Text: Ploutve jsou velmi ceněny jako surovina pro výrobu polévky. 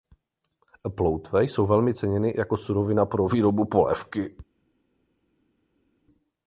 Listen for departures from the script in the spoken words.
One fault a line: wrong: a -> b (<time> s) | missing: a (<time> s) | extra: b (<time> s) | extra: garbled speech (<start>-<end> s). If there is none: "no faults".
no faults